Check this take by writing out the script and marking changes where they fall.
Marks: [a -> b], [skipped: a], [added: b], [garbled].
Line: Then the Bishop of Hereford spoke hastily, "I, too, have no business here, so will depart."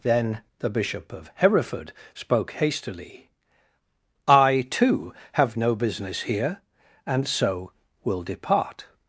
Then the Bishop of Hereford spoke hastily, "I, too, have no business here, [added: and] so will depart."